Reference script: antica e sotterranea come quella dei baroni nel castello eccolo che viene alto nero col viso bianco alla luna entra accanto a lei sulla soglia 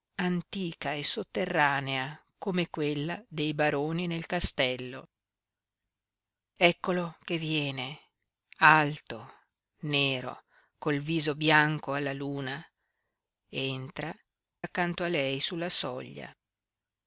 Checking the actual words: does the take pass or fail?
pass